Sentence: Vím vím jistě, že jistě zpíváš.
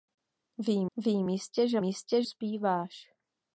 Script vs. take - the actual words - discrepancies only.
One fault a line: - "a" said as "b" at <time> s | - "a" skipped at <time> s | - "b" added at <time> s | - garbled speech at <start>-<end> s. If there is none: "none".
none